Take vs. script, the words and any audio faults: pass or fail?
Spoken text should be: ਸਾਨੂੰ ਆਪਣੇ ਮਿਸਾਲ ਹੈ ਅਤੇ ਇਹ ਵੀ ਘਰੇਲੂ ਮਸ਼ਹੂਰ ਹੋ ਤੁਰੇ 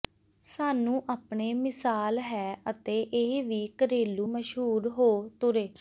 pass